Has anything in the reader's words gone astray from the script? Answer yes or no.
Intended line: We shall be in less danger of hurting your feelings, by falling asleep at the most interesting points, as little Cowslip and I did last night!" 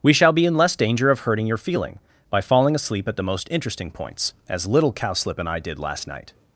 yes